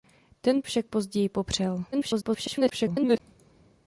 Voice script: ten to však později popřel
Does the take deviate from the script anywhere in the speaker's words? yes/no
yes